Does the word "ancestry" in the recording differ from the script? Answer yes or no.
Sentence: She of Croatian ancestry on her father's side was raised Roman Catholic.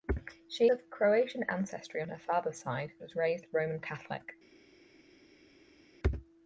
no